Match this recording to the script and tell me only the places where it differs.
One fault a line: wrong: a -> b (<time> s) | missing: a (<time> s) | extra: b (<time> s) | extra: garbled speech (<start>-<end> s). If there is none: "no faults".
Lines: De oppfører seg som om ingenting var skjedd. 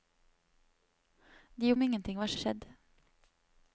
missing: oppfører seg som (1.7 s)
extra: var (2.3 s)